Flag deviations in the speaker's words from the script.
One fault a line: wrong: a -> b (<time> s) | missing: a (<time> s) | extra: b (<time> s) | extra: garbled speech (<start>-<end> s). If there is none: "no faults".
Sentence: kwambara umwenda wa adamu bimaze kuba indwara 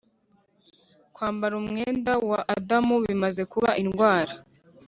no faults